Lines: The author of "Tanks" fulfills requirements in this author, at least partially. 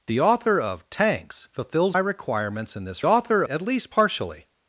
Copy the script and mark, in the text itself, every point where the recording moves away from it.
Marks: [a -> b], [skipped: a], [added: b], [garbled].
The author of "Tanks" fulfills requirements in this author, at least partially.